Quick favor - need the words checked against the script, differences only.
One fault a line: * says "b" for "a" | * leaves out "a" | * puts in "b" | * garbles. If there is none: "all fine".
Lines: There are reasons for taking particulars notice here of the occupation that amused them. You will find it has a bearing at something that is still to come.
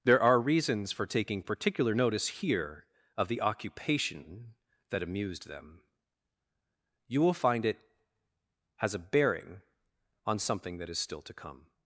* says "particular" for "particulars"
* says "on" for "at"